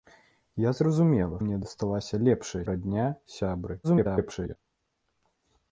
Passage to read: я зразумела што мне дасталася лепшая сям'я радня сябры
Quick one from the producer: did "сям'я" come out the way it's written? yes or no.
no